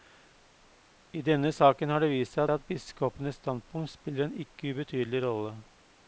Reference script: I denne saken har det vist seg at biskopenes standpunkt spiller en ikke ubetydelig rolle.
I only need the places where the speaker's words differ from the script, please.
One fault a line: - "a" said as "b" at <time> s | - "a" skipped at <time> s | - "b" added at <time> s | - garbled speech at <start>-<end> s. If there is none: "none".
- "seg" added at 2.5 s